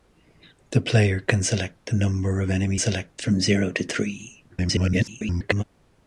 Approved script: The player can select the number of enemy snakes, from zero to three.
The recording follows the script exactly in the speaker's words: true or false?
false